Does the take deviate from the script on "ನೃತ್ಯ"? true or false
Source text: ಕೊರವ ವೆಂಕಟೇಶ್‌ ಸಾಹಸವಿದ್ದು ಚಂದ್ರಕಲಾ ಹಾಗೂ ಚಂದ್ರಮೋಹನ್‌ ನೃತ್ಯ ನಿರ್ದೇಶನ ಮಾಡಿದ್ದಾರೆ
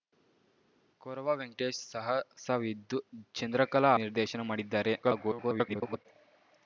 true